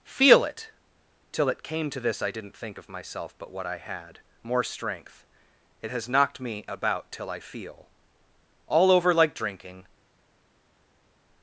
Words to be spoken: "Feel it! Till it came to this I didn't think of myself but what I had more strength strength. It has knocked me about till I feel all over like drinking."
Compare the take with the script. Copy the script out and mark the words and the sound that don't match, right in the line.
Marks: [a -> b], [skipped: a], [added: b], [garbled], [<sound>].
"Feel it! Till it came to this I didn't think of myself but what I had more strength [skipped: strength.] It has knocked me about till I feel all over like drinking."